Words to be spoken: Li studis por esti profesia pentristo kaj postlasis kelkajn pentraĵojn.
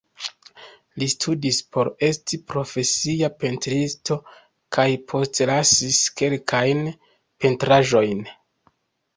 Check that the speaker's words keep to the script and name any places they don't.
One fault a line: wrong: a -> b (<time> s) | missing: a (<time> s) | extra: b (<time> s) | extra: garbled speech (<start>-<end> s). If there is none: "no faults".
no faults